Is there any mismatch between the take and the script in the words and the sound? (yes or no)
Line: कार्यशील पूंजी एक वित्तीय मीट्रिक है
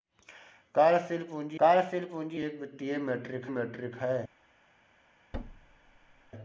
yes